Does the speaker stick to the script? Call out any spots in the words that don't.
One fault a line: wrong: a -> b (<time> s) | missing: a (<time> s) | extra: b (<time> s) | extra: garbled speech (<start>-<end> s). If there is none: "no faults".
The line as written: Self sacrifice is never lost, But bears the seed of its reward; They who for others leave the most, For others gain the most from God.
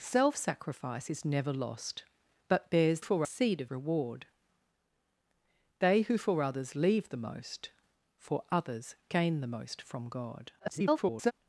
wrong: the -> for (3.0 s)
missing: its (3.7 s)
extra: garbled speech (10.6-11.3 s)